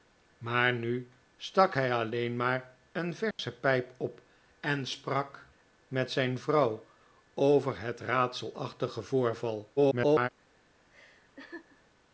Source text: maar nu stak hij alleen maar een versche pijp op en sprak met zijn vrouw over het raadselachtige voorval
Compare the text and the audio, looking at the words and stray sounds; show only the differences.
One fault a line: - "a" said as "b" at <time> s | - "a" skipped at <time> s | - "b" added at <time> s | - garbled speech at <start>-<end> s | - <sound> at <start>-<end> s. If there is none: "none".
- dropout at 3.3-3.4 s
- garbled speech at 9.8-10.3 s
- laugh at 10.9-11.8 s